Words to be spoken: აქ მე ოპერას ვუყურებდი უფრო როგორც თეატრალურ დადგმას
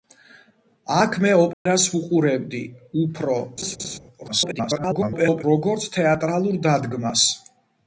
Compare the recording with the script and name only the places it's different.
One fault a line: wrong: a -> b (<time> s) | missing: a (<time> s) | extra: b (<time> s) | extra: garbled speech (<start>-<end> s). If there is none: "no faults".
extra: garbled speech (4.3-5.4 s)